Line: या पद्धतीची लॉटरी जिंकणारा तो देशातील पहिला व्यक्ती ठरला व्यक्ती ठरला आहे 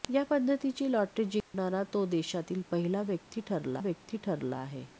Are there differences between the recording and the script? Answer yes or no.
no